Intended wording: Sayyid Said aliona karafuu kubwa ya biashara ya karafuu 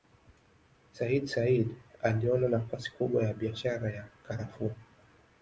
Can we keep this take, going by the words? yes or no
no